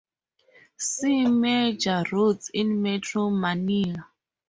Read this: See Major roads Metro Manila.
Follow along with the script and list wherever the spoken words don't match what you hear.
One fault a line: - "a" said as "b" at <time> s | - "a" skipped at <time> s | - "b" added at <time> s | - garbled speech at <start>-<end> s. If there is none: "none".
- "in" added at 2.5 s